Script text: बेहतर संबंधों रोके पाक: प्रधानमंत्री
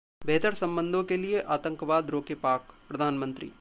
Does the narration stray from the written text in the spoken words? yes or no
yes